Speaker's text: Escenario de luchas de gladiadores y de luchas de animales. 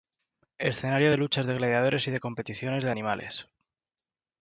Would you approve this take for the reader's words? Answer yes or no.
no